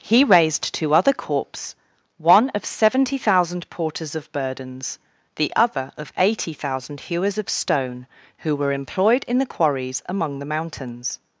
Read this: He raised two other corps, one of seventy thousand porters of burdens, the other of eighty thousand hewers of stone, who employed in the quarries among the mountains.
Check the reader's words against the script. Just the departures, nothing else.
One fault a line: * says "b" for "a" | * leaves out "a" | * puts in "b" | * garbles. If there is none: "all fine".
* puts in "were"